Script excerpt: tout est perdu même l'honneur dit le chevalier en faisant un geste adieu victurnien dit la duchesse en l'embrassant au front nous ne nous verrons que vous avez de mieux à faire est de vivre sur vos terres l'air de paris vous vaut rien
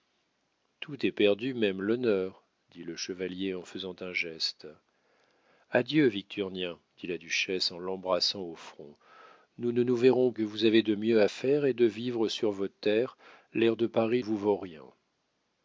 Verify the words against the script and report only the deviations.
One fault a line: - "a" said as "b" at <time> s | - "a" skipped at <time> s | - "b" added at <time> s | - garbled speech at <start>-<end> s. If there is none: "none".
none